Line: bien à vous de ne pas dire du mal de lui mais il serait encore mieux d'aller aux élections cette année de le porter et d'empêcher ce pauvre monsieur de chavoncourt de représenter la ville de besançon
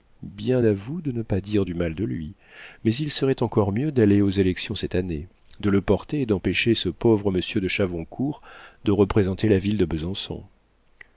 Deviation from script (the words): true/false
false